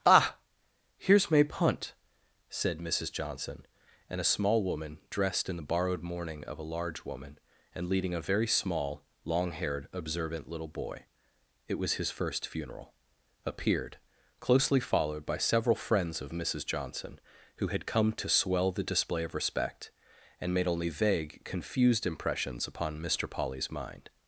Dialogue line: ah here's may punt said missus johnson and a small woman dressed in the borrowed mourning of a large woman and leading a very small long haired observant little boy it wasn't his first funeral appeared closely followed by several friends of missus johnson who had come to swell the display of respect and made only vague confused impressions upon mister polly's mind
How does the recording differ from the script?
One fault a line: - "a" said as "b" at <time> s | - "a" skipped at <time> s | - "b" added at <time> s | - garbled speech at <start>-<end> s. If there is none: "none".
- "wasn't" said as "was" at 11.8 s